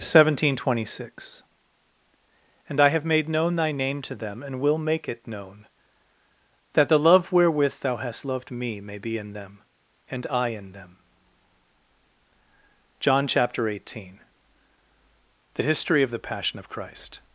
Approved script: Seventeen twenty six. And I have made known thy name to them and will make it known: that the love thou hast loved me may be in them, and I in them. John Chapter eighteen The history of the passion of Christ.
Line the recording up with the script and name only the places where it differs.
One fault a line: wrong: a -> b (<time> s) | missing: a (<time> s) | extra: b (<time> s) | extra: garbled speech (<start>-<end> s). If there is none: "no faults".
extra: wherewith (7.3 s)